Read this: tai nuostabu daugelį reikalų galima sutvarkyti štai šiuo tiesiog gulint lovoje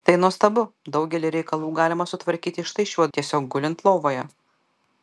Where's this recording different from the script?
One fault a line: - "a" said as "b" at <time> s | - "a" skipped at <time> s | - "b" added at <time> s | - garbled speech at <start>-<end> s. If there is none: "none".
none